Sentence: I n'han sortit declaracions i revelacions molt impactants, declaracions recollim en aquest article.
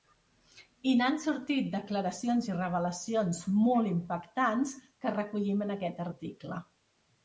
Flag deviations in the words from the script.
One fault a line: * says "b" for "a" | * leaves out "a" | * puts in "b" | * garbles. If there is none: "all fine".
* says "que" for "declaracions"